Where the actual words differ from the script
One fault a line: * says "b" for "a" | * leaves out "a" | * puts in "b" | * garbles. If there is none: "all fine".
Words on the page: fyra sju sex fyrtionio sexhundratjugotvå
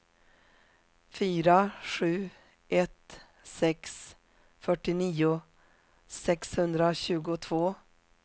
* puts in "ett"